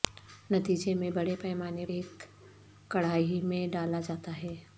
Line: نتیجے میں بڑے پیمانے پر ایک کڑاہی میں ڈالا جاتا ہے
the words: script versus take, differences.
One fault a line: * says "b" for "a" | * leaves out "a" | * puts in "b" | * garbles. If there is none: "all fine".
* leaves out "پر"